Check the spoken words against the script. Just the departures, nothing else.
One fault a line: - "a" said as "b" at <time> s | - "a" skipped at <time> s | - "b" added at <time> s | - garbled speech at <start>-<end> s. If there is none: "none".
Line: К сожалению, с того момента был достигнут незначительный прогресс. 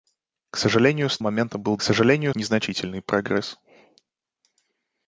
- "того" skipped at 1.2 s
- "достигнут" said as "сожалению" at 1.8 s